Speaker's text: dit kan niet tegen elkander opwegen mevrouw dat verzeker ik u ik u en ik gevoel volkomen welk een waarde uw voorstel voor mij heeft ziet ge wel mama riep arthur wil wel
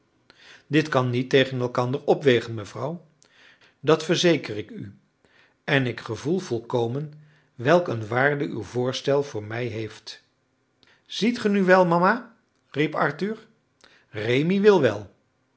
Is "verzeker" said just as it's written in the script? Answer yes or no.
yes